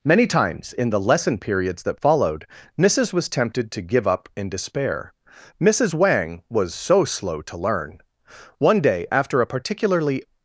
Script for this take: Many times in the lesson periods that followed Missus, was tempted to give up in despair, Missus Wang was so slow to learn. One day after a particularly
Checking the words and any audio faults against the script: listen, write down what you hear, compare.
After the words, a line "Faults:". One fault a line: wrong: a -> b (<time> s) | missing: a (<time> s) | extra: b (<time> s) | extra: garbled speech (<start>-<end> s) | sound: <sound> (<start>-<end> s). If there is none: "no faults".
Many times in the lesson periods that followed Missus, was tempted to give up in despair, Missus Wang was so slow to learn. One day after a particularly
Faults:
no faults